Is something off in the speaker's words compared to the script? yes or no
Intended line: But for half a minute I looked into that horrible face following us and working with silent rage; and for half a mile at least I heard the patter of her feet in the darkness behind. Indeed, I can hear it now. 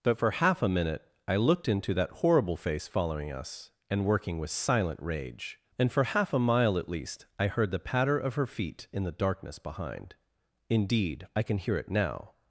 no